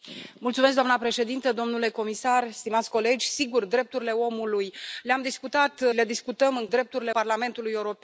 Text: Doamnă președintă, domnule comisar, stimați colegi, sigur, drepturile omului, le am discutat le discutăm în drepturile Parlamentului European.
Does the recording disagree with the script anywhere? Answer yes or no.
no